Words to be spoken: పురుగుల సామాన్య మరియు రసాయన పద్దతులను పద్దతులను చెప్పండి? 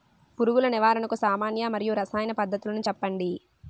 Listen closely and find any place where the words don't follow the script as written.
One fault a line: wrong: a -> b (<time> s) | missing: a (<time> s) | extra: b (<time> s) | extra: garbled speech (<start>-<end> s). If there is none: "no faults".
extra: నివారణకు (0.7 s)
missing: పద్దతులను (2.8 s)